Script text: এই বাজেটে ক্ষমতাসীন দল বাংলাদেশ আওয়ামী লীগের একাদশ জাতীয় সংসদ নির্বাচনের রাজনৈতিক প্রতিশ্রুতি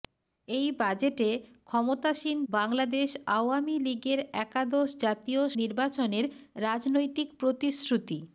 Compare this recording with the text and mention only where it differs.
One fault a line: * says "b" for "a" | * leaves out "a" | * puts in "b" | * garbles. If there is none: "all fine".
* leaves out "দল"
* leaves out "সংসদ"